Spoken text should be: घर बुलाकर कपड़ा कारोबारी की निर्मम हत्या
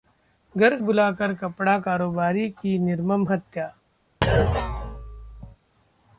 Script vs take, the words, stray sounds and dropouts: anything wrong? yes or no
yes